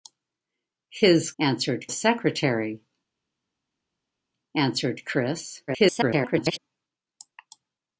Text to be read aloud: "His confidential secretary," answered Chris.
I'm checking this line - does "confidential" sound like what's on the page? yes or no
no